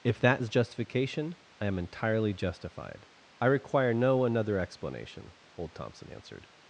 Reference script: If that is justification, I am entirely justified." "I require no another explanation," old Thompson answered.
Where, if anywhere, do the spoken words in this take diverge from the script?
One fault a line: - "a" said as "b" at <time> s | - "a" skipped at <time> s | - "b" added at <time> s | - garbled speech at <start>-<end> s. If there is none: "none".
none